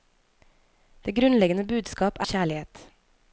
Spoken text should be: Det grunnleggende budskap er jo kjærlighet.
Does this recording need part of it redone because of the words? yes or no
yes